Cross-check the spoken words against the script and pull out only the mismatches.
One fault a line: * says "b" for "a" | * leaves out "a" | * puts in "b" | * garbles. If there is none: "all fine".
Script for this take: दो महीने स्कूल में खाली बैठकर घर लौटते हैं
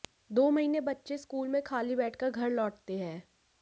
* puts in "बच्चे"